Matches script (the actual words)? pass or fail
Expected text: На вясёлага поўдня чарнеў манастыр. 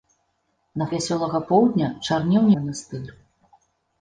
pass